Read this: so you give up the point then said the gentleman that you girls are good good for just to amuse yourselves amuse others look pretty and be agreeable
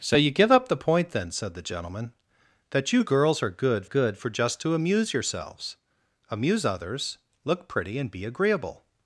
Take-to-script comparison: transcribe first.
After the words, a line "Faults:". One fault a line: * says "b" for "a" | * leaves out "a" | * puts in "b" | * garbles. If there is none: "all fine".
so you give up the point then said the gentleman that you girls are good good for just to amuse yourselves amuse others look pretty and be agreeable
Faults:
all fine